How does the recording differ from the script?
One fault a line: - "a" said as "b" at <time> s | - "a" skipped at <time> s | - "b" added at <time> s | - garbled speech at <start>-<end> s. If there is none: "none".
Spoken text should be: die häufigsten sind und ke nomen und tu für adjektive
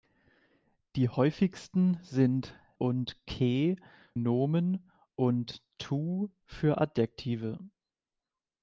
none